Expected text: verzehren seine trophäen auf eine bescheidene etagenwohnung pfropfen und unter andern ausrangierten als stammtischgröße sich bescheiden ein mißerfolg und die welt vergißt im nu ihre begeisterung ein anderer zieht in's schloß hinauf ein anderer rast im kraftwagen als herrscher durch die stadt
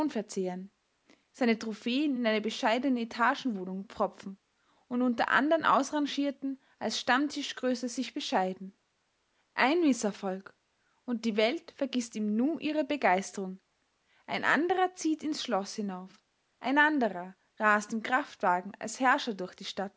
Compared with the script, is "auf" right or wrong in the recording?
wrong